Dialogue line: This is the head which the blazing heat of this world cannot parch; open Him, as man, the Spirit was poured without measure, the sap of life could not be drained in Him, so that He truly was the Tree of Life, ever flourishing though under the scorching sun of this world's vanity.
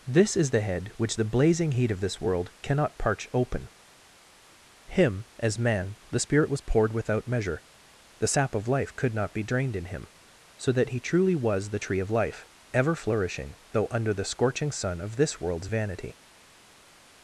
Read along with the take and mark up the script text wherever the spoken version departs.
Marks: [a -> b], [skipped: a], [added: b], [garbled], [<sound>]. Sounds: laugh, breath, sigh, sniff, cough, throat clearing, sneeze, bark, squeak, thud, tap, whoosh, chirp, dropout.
This is the head which the blazing heat of this world cannot parch; open Him, as man, the Spirit was poured without measure, the sap of life could not be drained in Him, so that He truly was the Tree of Life, ever flourishing though under the scorching sun of this world's vanity.